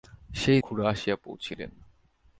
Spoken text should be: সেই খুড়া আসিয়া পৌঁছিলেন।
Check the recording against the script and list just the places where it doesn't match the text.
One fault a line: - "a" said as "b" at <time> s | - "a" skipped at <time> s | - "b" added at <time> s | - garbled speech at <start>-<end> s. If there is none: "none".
none